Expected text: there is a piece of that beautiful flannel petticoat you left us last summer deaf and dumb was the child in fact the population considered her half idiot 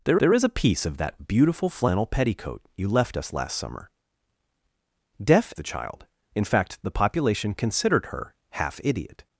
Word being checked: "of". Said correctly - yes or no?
yes